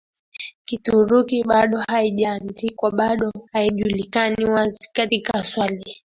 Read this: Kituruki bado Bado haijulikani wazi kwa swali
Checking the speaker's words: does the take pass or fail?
fail